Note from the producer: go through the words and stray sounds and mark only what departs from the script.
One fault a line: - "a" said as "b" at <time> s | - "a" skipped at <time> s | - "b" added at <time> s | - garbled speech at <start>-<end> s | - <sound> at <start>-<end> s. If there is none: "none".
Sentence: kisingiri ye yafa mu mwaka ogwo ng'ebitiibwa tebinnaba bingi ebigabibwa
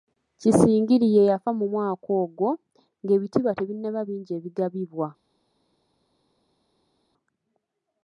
none